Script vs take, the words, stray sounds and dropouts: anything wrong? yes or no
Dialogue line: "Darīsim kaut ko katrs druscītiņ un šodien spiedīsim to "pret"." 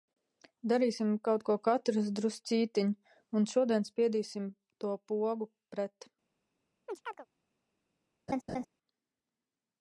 yes